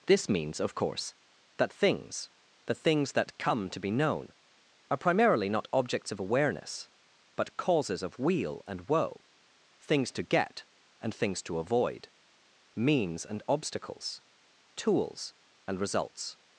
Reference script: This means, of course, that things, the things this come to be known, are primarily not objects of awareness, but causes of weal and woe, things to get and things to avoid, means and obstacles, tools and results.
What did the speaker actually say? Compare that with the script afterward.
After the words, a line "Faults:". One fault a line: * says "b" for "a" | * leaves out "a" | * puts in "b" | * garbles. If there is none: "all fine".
This means, of course, that things, the things that come to be known, are primarily not objects of awareness, but causes of weal and woe, things to get and things to avoid, means and obstacles, tools and results.
Faults:
* says "that" for "this"